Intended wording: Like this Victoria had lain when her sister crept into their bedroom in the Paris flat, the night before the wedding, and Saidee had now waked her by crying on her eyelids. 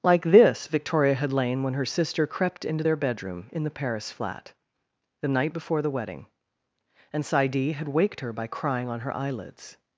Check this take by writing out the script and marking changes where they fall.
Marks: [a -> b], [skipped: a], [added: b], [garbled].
Like this Victoria had lain when her sister crept into their bedroom in the Paris flat, the night before the wedding, and Saidee had [skipped: now] waked her by crying on her eyelids.